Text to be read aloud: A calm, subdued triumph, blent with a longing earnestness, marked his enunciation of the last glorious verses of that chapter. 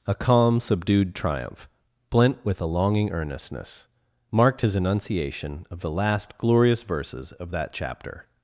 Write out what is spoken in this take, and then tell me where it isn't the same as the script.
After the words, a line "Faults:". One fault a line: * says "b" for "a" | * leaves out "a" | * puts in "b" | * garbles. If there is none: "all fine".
A calm, subdued triumph, blent with a longing earnestness, marked his enunciation of the last glorious verses of that chapter.
Faults:
all fine